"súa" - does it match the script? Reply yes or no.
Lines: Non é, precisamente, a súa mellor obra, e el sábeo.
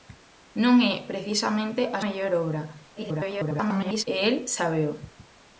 no